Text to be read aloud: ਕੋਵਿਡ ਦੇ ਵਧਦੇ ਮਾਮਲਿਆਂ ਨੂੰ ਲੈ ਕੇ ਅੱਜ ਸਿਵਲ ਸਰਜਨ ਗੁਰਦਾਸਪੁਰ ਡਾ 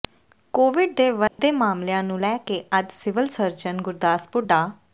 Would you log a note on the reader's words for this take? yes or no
no